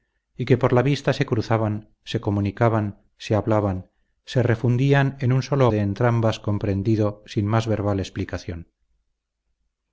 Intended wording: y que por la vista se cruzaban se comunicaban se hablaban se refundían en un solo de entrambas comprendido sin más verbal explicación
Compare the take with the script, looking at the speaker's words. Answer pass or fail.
pass